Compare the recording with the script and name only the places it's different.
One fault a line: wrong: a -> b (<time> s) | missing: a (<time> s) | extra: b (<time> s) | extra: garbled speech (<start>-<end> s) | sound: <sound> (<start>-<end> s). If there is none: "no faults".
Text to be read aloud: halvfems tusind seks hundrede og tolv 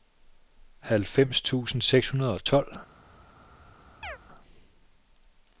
sound: chirp (4.0-4.2 s)